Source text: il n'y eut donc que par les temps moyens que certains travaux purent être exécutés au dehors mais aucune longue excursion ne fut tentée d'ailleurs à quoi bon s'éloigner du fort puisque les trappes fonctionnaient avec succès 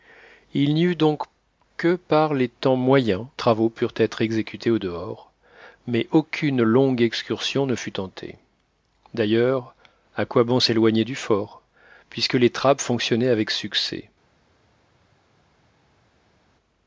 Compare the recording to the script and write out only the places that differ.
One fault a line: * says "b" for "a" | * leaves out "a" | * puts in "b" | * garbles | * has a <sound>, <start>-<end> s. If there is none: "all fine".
* leaves out "que certains"